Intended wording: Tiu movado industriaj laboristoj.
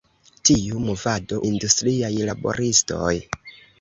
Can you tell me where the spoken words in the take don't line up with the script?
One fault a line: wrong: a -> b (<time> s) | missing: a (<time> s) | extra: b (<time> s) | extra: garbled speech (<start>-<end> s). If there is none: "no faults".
no faults